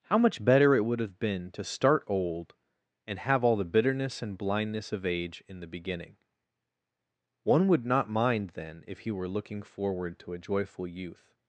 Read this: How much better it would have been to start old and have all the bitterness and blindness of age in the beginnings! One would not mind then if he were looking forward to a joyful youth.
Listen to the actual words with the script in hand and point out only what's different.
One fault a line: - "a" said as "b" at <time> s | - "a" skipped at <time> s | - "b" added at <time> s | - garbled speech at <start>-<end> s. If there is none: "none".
- "beginnings" said as "beginning" at 5.7 s